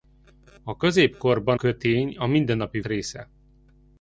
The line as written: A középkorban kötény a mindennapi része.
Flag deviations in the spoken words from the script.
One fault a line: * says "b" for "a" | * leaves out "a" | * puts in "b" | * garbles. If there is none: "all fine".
all fine